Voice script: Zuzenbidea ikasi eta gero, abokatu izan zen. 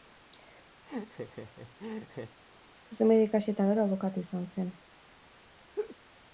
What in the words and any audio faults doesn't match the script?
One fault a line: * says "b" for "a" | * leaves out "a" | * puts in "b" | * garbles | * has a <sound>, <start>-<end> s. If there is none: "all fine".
* has a laugh, 0.8-2.4 s
* has a laugh, 5.8-6.0 s